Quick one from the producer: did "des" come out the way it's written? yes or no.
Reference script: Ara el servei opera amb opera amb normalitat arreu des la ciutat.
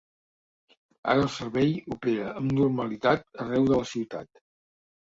no